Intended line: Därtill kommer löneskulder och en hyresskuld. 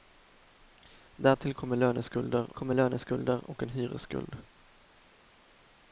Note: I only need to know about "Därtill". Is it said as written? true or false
true